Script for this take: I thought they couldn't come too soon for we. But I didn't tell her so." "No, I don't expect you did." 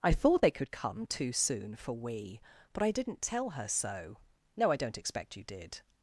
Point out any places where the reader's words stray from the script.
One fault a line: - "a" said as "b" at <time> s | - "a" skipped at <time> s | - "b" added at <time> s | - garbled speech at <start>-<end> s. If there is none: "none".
- "couldn't" said as "could" at 0.5 s